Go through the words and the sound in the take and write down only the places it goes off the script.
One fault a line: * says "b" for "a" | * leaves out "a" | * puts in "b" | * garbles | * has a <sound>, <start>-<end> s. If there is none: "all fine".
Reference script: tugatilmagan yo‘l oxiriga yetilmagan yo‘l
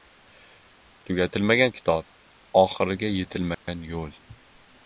* says "kitob" for "yo‘l"
* has a dropout, 3.5-3.7 s